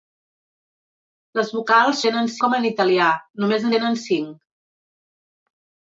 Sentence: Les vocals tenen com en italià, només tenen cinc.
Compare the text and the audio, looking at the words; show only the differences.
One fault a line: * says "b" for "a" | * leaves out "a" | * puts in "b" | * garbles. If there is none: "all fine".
all fine